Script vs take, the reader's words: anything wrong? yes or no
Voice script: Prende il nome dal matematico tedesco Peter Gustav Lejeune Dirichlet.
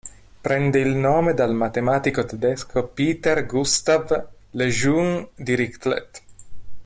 no